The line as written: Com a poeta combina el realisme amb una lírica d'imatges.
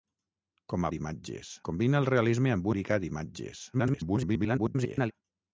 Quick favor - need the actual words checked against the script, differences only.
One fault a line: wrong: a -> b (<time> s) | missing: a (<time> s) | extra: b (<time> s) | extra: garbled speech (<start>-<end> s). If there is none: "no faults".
wrong: poeta -> d'imatges (1.0 s)
missing: una (2.7 s)
extra: garbled speech (3.7-5.1 s)